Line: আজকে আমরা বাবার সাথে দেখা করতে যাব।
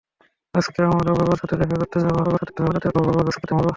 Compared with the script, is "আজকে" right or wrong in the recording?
right